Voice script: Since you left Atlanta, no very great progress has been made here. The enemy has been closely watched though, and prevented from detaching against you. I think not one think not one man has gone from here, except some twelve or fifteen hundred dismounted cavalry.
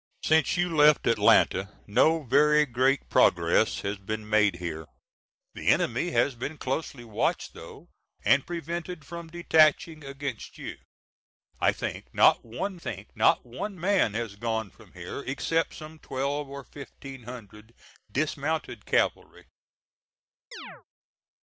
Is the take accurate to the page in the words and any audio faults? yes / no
no